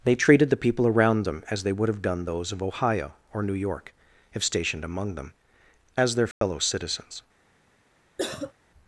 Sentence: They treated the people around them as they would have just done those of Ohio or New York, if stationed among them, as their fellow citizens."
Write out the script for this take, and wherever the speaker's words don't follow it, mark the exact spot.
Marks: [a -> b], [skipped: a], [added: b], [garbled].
They treated the people around them as they would have [skipped: just] done those of Ohio or New York, if stationed among them, as their fellow citizens."